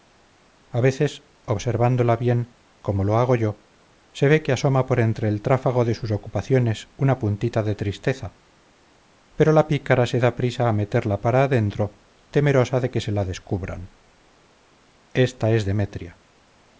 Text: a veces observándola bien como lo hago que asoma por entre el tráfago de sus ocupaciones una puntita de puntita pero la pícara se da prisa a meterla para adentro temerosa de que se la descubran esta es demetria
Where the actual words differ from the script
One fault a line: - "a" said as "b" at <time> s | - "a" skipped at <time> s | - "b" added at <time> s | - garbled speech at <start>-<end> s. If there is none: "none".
- "yo se ve" added at 3.4 s
- "puntita" said as "tristeza" at 7.7 s